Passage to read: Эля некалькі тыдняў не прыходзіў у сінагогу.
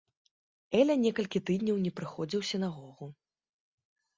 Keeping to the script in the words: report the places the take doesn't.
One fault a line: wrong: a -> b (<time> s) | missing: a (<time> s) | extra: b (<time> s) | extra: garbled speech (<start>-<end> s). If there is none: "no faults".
no faults